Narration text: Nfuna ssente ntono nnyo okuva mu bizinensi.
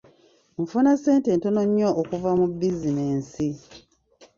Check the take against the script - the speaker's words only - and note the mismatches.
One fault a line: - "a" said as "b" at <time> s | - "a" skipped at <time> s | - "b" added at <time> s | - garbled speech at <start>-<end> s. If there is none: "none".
none